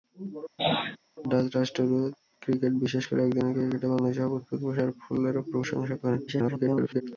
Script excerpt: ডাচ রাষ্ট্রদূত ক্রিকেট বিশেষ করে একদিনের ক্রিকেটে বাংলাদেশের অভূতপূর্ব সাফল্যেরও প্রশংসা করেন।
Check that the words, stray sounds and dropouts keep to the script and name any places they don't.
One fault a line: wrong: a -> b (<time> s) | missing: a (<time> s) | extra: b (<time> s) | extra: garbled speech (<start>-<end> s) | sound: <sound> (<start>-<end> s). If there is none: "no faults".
sound: sneeze (0.6-1.0 s)
extra: garbled speech (6.3-7.0 s)